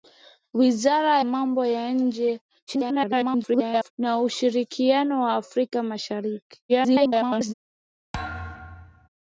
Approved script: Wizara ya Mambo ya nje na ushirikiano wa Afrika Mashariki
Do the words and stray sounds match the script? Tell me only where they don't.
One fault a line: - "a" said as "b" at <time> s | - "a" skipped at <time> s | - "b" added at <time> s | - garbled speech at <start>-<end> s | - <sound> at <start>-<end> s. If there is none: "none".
- "ya" skipped at 1.2 s
- garbled speech at 2.7-3.9 s
- garbled speech at 6.7-7.5 s
- thud at 8.1-9.1 s